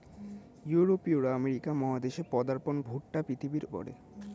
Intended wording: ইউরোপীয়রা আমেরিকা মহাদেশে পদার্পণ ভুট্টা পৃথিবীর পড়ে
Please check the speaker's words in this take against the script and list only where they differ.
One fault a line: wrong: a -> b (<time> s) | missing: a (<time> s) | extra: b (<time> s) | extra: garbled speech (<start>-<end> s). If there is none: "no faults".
no faults